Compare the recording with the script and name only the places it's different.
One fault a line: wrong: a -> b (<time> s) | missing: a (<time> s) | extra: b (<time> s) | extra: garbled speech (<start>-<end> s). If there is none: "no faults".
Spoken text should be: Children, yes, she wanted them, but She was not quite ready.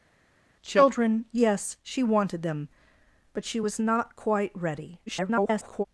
extra: garbled speech (5.1-5.8 s)